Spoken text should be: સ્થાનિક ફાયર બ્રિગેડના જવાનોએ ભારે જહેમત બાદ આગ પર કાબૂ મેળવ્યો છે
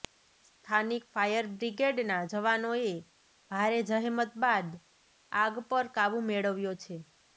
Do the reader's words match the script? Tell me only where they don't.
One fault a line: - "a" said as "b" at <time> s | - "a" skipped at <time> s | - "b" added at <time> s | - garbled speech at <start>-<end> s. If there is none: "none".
none